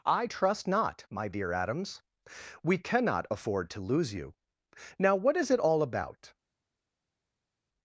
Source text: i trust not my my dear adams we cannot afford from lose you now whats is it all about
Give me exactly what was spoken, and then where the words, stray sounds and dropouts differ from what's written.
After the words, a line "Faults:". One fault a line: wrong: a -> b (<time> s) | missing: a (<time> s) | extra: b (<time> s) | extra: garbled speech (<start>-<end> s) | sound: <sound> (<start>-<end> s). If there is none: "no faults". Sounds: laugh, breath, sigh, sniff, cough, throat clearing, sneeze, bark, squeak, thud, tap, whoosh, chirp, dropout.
i trust not my dear adams we cannot afford to lose you now what is it all about
Faults:
missing: my (1.3 s)
wrong: from -> to (3.7 s)
wrong: whats -> what (5.2 s)